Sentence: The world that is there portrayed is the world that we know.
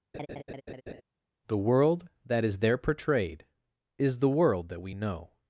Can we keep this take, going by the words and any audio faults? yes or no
no